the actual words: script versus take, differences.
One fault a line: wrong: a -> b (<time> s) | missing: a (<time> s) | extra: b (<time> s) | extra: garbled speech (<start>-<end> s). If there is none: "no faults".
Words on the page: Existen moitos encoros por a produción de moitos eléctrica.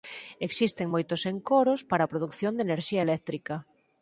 wrong: por -> para (1.9 s)
wrong: moitos -> enerxía (2.7 s)